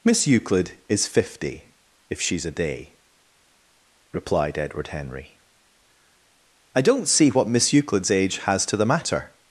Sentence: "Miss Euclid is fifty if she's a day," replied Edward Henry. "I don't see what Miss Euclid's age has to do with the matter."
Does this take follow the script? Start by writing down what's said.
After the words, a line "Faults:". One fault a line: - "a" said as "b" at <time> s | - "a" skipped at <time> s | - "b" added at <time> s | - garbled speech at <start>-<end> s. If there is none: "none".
"Miss Euclid is fifty if she's a day," replied Edward Henry. "I don't see what Miss Euclid's age has to the matter."
Faults:
- "do with" skipped at 8.8 s